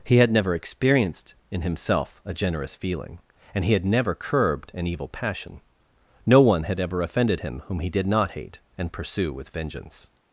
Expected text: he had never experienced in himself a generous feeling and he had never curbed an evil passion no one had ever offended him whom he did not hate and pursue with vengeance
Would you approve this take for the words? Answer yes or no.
yes